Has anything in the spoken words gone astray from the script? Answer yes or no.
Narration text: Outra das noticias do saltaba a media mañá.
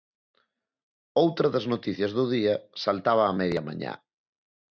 yes